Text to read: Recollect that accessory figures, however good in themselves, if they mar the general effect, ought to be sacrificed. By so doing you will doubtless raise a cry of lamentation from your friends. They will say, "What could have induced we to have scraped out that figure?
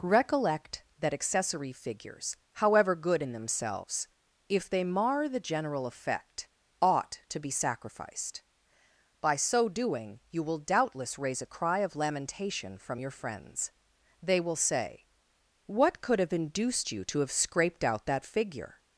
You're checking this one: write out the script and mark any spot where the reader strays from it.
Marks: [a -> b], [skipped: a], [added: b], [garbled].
Recollect that accessory figures, however good in themselves, if they mar the general effect, ought to be sacrificed. By so doing you will doubtless raise a cry of lamentation from your friends. They will say, "What could have induced [we -> you] to have scraped out that figure?